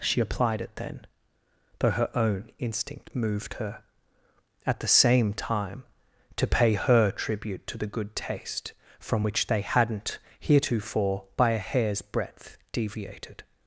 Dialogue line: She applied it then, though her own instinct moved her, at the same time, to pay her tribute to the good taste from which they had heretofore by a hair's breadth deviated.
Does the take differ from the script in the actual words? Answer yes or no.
yes